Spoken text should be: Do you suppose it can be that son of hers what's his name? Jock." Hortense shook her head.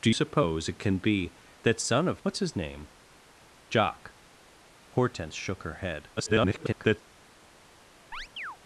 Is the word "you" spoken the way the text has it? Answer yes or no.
no